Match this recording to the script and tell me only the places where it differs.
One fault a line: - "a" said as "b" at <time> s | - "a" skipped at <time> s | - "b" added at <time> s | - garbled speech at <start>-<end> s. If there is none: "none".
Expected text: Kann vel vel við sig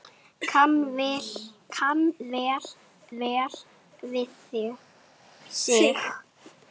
none